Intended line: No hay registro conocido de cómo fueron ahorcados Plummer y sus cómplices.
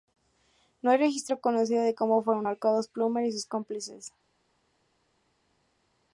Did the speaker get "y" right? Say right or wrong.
right